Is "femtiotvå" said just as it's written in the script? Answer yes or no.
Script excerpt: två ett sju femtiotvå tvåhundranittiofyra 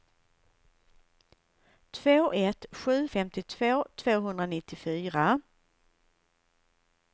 yes